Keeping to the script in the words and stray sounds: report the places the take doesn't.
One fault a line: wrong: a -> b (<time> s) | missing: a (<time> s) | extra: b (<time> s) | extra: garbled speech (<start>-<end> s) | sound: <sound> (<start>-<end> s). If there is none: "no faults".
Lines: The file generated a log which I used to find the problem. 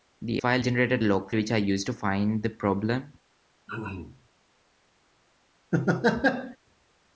sound: throat clearing (3.7-4.3 s)
sound: laugh (5.7-6.6 s)